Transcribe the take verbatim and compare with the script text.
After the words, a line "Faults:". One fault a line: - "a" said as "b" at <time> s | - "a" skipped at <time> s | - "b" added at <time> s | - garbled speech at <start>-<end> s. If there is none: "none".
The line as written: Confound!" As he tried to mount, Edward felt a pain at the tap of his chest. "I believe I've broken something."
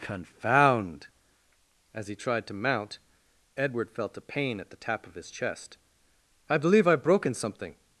Confound!" As he tried to mount, Edward felt a pain at the tap of his chest. "I believe I've broken something."
Faults:
none